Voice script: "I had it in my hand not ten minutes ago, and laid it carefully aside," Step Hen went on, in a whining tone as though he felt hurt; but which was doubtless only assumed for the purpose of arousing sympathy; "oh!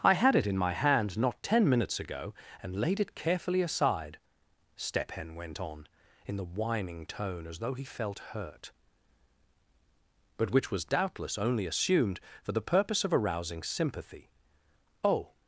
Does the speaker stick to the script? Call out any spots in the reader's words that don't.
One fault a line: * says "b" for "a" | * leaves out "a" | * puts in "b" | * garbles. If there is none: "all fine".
* says "the" for "a"